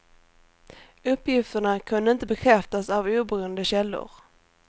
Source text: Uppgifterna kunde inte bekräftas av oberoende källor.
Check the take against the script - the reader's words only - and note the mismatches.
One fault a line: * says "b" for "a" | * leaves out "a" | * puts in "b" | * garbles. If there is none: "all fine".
all fine